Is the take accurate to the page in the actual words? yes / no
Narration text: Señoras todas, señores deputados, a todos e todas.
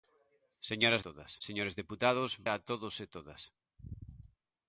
yes